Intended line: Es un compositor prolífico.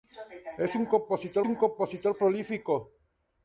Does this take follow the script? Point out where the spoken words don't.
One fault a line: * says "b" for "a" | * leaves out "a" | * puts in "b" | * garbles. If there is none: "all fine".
* puts in "un compositor"